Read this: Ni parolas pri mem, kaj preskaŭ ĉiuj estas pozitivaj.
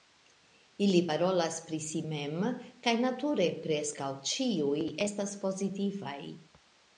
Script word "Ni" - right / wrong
wrong